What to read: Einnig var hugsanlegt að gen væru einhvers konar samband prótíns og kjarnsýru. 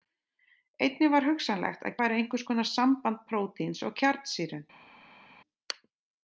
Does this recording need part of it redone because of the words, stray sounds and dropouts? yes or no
yes